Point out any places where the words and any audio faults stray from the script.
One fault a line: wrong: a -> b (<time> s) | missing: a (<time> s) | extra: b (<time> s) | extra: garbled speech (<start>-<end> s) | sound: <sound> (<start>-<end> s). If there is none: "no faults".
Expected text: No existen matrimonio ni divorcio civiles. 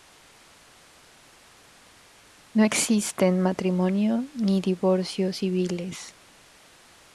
no faults